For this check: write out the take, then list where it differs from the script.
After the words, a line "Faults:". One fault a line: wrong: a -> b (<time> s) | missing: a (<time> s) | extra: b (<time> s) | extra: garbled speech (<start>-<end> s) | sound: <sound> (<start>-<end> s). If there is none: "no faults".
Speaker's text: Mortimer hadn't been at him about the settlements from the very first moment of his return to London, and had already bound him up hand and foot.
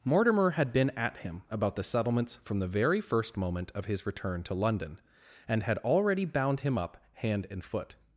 Mortimer had been at him about the settlements from the very first moment of his return to London, and had already bound him up hand and foot.
Faults:
wrong: hadn't -> had (0.5 s)